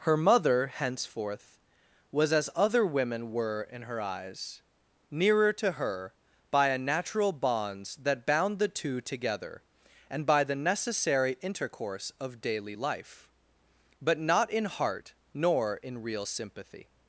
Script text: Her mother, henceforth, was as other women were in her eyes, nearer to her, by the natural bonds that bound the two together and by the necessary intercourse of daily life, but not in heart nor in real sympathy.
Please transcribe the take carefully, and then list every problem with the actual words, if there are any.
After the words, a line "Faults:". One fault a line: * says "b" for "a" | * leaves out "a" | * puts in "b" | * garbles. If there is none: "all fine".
Her mother, henceforth, was as other women were in her eyes, nearer to her, by a natural bonds that bound the two together and by the necessary intercourse of daily life, but not in heart nor in real sympathy.
Faults:
* says "a" for "the"